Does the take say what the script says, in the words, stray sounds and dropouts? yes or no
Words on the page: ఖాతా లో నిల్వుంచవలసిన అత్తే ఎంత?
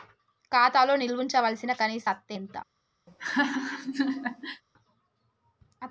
no